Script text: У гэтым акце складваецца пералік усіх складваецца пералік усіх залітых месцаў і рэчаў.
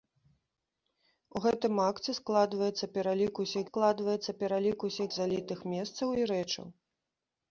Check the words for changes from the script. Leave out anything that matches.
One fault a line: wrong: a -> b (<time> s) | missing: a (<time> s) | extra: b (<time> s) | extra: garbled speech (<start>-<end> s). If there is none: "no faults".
no faults